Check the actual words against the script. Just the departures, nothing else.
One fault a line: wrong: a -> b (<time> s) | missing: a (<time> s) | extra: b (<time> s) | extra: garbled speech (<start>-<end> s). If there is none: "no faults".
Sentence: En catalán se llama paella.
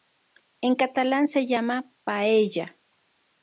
no faults